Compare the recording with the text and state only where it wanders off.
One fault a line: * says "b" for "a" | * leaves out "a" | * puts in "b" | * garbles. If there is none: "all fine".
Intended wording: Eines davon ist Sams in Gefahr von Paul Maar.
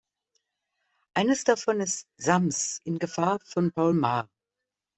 all fine